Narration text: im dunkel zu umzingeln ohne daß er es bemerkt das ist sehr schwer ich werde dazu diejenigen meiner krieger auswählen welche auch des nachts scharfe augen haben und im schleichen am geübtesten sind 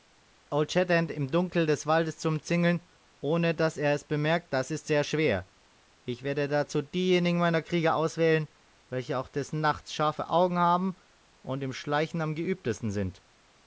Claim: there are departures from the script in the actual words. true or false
true